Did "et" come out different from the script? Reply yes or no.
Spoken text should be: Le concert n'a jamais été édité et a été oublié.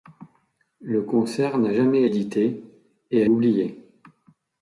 no